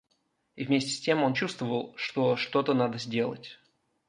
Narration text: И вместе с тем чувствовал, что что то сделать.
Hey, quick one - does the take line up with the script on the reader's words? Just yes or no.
no